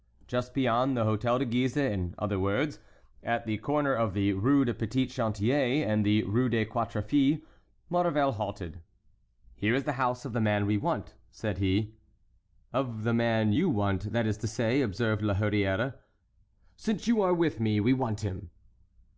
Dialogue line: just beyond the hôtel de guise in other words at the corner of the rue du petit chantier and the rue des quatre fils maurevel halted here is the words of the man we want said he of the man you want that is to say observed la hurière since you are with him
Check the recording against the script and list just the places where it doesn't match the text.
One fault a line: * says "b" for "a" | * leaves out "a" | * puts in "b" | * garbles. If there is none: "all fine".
* says "house" for "words"
* puts in "me we want"